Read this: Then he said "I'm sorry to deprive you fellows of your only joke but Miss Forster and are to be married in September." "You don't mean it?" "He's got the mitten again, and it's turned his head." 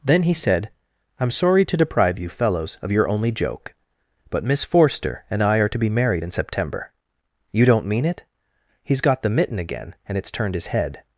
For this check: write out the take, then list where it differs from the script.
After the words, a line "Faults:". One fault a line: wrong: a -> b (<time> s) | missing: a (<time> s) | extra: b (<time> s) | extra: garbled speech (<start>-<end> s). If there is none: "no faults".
Then he said "I'm sorry to deprive you fellows of your only joke but Miss Forster and I are to be married in September." "You don't mean it?" "He's got the mitten again, and it's turned his head."
Faults:
extra: I (5.4 s)